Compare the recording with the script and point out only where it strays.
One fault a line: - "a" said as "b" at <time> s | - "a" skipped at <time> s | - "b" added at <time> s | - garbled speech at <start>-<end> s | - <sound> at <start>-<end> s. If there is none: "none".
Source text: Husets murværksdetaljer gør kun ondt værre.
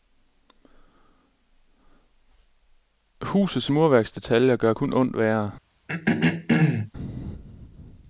- throat clearing at 5.9-6.9 s